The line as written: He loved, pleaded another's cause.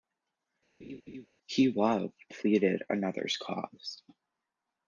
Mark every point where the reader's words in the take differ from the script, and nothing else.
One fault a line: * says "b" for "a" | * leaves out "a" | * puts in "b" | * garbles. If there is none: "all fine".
all fine